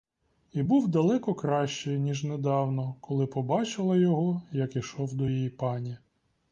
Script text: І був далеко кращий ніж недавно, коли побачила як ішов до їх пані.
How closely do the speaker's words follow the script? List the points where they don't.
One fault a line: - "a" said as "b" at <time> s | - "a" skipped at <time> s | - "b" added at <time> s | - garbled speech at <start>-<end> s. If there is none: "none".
- "його" added at 4.0 s
- "їх" said as "її" at 5.3 s